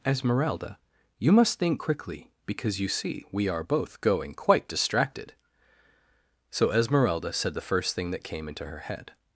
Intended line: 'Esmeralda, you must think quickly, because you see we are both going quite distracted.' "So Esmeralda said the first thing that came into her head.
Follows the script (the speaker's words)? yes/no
yes